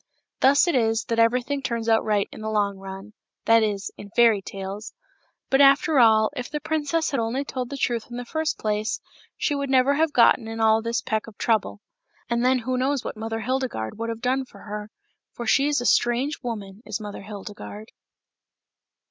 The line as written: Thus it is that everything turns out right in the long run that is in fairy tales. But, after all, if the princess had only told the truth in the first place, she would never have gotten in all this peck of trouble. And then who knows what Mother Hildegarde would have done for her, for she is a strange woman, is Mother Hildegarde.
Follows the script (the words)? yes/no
yes